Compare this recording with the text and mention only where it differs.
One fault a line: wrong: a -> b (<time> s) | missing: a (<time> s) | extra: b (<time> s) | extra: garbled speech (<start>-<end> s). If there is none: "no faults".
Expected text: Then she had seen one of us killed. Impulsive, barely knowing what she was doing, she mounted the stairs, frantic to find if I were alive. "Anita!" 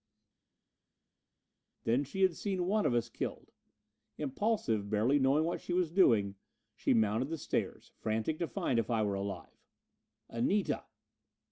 no faults